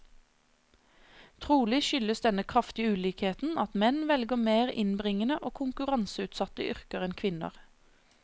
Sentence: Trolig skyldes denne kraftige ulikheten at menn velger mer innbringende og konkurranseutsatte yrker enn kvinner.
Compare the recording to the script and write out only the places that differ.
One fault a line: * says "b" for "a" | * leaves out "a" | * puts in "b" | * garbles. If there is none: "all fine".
all fine